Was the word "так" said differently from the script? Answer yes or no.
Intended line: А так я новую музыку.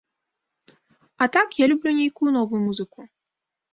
no